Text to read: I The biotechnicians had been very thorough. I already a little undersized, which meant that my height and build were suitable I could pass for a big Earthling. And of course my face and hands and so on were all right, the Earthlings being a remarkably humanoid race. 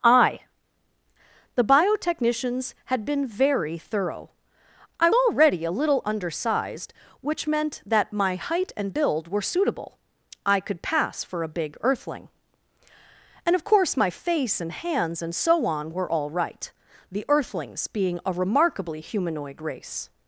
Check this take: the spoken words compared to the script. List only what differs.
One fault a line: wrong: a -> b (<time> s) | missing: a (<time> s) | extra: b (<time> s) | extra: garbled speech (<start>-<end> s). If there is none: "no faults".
no faults